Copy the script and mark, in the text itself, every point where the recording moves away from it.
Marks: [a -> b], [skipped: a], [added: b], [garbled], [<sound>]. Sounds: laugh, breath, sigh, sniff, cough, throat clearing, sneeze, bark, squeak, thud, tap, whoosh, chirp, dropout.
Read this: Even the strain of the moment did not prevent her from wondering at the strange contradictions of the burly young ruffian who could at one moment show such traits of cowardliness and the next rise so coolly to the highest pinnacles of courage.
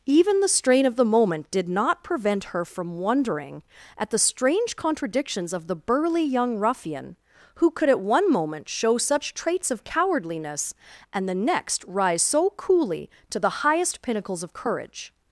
Even the strain of the moment did not prevent her from wondering at the strange contradictions of the burly young ruffian who could at one moment show such traits of cowardliness and the next rise so coolly to the highest pinnacles of courage.